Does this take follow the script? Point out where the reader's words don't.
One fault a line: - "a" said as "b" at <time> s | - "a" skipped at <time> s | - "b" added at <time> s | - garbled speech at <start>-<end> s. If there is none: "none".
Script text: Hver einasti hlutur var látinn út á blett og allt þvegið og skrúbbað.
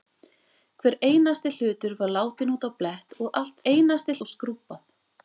- "þvegið" said as "einasti" at 3.7 s